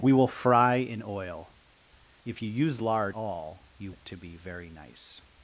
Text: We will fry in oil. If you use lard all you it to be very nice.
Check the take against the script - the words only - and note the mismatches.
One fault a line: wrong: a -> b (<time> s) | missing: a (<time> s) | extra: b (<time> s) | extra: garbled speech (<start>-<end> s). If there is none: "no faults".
no faults